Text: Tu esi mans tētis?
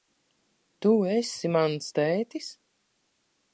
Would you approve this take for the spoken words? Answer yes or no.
yes